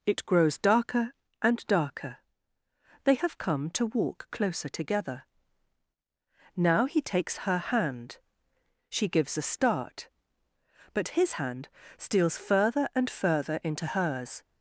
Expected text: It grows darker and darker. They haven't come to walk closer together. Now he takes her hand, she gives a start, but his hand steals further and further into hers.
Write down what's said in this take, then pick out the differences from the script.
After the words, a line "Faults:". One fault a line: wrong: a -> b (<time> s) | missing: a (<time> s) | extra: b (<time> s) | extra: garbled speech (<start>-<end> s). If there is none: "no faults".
It grows darker and darker. They have come to walk closer together. Now he takes her hand, she gives a start, but his hand steals further and further into hers.
Faults:
wrong: haven't -> have (3.1 s)